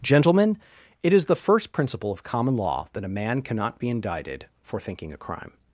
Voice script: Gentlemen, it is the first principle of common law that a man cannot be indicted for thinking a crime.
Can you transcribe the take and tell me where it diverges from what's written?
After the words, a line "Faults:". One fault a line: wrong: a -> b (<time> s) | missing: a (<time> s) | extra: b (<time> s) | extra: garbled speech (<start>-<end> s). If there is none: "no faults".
Gentlemen, it is the first principle of common law that a man cannot be indicted for thinking a crime.
Faults:
no faults